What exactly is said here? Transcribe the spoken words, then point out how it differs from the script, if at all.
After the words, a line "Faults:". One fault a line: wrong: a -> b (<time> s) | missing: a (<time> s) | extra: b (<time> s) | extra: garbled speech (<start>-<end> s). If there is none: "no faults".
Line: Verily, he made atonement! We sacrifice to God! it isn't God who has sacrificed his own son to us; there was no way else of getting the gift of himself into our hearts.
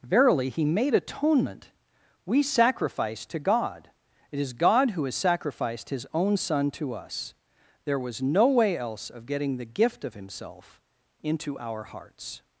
Verily, he made atonement! We sacrifice to God! it is God who has sacrificed his own son to us; there was no way else of getting the gift of himself into our hearts.
Faults:
wrong: isn't -> is (4.4 s)